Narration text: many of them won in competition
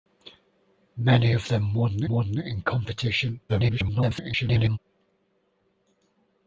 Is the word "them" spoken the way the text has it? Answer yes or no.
yes